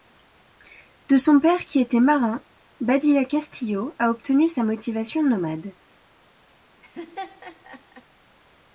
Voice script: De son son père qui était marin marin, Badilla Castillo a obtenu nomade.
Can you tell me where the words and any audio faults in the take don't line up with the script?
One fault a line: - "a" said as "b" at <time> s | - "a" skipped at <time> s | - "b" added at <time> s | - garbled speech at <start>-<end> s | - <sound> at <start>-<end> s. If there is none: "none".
- "son" skipped at 1.4 s
- "marin" skipped at 2.4 s
- "sa motivation" added at 4.5 s
- laugh at 6.8-8.0 s